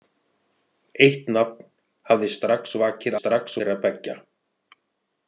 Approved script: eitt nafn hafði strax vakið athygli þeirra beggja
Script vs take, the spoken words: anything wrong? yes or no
yes